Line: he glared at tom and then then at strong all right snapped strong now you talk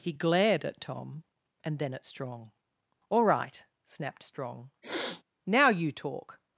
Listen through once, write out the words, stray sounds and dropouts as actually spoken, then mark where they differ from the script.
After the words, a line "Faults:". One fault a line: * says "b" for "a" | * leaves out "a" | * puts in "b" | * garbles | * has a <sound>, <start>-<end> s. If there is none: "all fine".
he glared at tom and then at strong all right snapped strong now you talk
Faults:
* leaves out "then"
* has a sniff, 4.8-5.2 s